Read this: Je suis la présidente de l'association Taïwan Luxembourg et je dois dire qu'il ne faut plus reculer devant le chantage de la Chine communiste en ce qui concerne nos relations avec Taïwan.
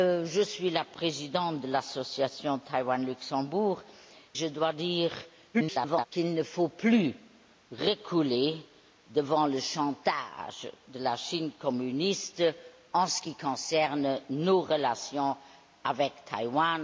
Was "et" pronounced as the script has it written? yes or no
no